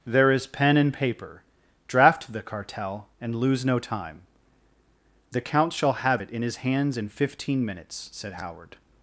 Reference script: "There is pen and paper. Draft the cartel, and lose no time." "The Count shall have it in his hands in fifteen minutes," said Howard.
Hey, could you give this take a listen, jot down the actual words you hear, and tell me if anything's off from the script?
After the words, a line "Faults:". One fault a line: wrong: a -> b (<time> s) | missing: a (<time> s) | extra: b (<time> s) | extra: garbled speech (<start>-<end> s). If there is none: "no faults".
"There is pen and paper. Draft the cartel, and lose no time." "The Count shall have it in his hands in fifteen minutes," said Howard.
Faults:
no faults